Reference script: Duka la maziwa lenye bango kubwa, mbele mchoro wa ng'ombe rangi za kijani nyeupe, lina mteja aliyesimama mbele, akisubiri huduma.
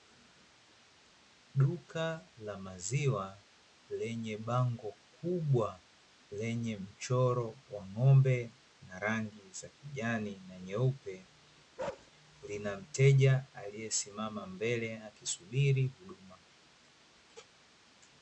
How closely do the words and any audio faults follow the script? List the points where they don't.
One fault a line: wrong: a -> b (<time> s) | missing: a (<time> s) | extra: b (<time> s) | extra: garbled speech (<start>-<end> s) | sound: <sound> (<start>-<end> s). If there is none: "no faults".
wrong: mbele -> lenye (6.4 s)
extra: na (8.9 s)
extra: na (10.5 s)
sound: bark (11.8-12.1 s)